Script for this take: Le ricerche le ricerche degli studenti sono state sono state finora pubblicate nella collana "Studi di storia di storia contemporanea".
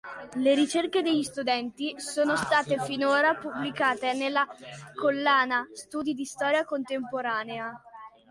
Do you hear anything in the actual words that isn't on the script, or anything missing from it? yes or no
yes